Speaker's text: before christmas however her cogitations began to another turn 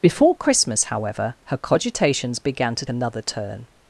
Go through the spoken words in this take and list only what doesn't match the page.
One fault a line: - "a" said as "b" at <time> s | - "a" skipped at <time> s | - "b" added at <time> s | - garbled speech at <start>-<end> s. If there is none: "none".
none